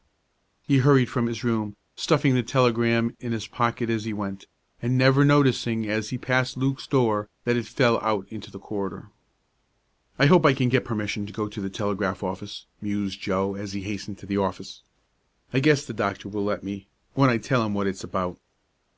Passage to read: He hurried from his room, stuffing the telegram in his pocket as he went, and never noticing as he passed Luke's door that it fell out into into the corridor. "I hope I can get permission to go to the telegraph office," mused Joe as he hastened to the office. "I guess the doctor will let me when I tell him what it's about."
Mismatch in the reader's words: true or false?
true